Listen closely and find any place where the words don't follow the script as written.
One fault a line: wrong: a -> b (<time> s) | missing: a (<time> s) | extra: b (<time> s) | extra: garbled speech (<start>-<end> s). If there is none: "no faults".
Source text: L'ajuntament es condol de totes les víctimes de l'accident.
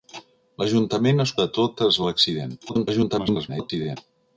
missing: condol (1.4 s)
missing: les víctimes (2.0 s)
extra: garbled speech (2.7-4.0 s)